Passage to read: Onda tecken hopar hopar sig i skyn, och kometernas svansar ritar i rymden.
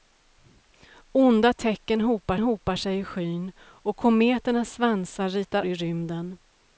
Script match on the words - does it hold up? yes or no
yes